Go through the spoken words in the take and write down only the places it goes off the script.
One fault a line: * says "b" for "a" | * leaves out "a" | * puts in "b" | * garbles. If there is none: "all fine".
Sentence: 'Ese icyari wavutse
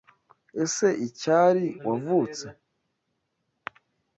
all fine